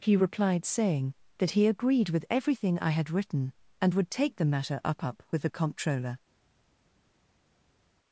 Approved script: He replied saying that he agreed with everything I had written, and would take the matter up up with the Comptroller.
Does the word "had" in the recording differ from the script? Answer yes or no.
no